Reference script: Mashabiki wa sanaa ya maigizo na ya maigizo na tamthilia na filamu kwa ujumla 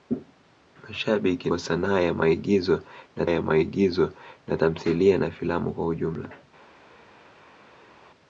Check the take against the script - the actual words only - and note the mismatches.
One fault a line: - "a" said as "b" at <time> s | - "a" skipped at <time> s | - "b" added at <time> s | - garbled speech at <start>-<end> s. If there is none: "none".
none